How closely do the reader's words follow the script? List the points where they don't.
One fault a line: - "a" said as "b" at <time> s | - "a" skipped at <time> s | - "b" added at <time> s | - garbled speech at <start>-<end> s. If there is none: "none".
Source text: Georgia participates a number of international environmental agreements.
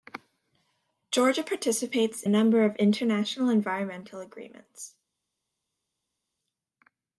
none